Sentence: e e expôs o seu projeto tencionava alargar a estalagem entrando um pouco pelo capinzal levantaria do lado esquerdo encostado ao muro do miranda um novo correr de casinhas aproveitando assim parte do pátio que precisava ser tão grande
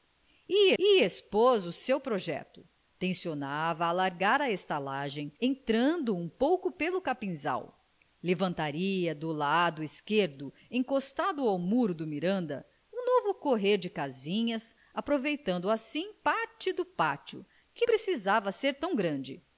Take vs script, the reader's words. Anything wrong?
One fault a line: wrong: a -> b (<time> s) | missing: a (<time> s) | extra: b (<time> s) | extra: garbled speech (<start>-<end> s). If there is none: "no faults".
no faults